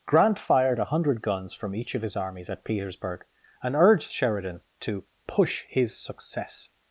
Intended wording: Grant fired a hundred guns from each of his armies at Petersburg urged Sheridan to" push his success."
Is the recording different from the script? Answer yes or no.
yes